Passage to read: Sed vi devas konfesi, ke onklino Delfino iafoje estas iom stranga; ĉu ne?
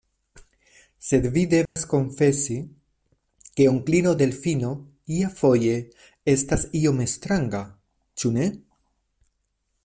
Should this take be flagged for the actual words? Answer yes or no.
no